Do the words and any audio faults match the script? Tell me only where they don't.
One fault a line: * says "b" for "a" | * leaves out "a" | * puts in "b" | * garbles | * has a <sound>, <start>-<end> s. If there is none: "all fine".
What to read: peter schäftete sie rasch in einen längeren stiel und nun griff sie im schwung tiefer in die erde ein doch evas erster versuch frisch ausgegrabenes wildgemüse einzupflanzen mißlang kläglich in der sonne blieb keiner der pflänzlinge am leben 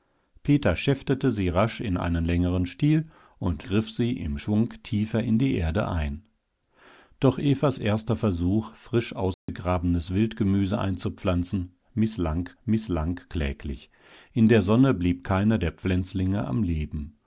* leaves out "nun"
* has a dropout, 9.3-9.5 s
* puts in "mißlang"